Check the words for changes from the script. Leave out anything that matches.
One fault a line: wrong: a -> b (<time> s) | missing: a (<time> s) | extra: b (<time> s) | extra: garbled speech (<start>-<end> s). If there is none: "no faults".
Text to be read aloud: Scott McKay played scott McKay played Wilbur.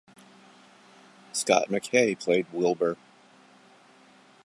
missing: scott McKay played (2.4 s)